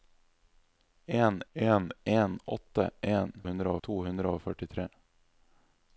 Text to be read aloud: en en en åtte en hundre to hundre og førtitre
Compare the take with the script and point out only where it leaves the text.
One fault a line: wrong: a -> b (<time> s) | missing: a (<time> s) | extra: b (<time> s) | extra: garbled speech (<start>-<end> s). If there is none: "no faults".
no faults